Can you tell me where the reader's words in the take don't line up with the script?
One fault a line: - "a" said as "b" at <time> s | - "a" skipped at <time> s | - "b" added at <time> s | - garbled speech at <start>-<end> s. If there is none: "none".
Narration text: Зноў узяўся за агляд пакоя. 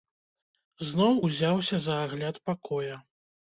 none